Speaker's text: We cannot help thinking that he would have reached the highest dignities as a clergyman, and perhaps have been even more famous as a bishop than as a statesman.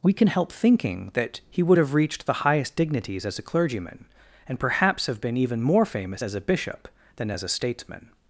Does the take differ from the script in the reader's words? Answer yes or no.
yes